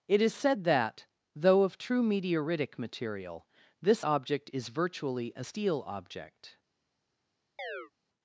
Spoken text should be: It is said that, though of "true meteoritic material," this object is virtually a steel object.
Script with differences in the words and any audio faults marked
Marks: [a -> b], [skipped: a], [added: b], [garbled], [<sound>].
It is said that, though of "true meteoritic material," this object is virtually a steel object. [chirp]